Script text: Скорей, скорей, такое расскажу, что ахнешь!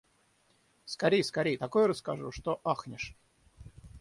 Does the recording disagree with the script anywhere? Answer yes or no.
no